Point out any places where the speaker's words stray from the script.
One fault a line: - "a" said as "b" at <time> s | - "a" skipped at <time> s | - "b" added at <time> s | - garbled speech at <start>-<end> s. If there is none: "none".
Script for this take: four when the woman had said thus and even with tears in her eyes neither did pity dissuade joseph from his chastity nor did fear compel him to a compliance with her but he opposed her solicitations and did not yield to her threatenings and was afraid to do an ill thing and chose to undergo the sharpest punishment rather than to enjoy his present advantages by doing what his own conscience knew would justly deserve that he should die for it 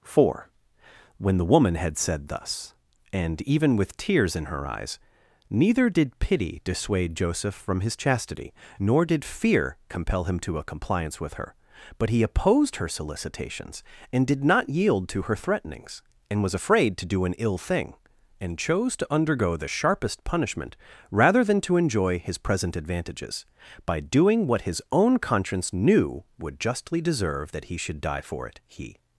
- "he" added at 28.7 s